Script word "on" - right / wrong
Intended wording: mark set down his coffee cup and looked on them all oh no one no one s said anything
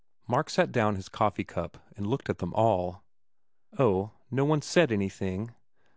wrong